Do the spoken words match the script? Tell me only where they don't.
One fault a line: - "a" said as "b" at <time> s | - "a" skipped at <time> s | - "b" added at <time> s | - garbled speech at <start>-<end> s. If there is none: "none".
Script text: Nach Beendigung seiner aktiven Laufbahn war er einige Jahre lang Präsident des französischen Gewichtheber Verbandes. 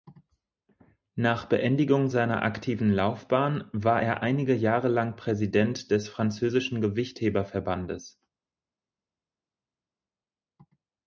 none